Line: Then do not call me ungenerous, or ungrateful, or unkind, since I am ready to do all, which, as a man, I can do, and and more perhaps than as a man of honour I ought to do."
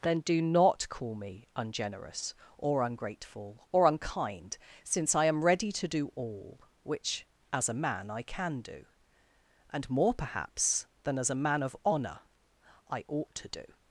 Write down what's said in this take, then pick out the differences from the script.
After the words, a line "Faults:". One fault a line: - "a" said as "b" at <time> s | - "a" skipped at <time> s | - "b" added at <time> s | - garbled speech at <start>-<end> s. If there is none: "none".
Then do not call me ungenerous, or ungrateful, or unkind, since I am ready to do all, which, as a man, I can do, and more perhaps than as a man of honour I ought to do."
Faults:
- "and" skipped at 9.9 s